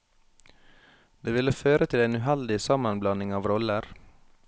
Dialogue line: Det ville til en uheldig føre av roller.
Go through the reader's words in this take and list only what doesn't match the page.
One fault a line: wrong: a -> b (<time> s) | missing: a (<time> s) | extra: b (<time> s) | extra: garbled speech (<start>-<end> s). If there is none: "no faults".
extra: føre (1.6 s)
wrong: føre -> sammenblanding (2.7 s)